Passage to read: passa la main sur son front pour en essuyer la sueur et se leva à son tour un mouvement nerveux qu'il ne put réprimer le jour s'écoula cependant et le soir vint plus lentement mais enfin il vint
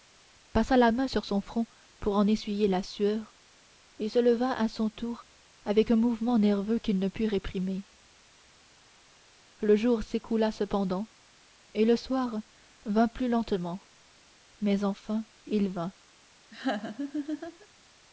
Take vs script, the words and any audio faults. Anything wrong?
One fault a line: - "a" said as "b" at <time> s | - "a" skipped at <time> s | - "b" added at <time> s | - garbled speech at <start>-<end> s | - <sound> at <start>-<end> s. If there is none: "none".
- "avec" added at 5.7 s
- laugh at 16.5-17.7 s